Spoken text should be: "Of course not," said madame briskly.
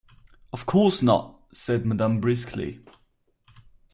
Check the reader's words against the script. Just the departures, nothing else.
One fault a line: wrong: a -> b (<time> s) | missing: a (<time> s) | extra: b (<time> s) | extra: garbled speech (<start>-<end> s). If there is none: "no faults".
no faults